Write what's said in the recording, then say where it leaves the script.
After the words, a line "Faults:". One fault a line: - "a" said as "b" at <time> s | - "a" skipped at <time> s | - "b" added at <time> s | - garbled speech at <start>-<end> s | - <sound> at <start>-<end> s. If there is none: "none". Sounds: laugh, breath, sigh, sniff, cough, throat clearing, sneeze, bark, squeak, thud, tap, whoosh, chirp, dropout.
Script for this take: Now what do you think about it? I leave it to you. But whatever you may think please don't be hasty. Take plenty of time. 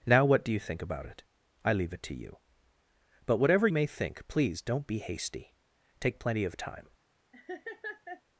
Now what do you think about it? I leave it to you. But whatever may think please don't be hasty. Take plenty of time.
Faults:
- "you" skipped at 3.7 s
- laugh at 7.3-8.2 s